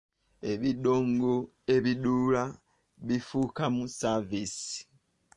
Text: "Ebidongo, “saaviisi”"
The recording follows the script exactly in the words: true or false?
false